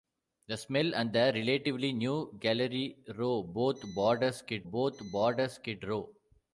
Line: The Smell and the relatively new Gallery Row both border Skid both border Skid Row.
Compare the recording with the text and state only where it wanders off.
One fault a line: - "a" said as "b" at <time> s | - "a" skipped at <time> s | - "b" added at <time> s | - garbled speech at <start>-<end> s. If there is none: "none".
none